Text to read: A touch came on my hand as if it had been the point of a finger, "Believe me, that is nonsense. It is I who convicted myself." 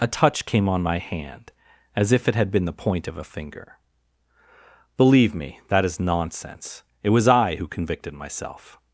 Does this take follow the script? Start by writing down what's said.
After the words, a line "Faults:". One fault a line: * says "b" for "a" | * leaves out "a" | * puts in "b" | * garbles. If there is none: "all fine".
A touch came on my hand as if it had been the point of a finger, "Believe me, that is nonsense. It was I who convicted myself."
Faults:
* says "was" for "is"